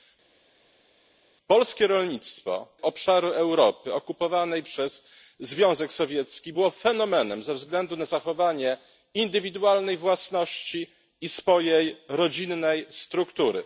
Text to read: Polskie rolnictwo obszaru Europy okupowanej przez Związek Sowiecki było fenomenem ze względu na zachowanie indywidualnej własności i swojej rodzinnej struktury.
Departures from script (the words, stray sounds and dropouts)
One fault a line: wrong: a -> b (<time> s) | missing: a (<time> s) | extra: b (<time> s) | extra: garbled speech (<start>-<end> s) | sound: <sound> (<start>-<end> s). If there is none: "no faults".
no faults